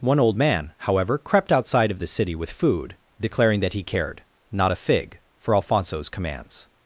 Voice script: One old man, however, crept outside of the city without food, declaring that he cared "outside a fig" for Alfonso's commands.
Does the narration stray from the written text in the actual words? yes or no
yes